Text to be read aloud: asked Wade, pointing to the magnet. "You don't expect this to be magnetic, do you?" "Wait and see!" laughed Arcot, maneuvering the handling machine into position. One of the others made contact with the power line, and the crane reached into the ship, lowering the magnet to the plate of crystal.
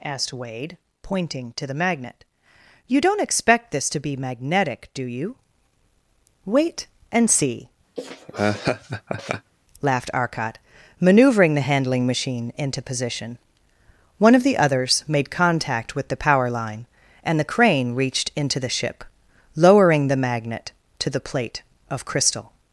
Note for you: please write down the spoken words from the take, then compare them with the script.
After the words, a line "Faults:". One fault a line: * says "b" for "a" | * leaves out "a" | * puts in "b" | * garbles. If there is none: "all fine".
asked Wade, pointing to the magnet. "You don't expect this to be magnetic, do you?" "Wait and see!" laughed Arcot, maneuvering the handling machine into position. One of the others made contact with the power line, and the crane reached into the ship, lowering the magnet to the plate of crystal.
Faults:
all fine